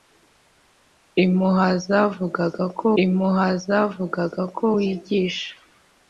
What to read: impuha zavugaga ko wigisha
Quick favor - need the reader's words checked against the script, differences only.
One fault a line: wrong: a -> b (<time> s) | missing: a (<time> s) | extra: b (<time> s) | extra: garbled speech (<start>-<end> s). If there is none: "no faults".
extra: impuha zavugaga ko (3.0 s)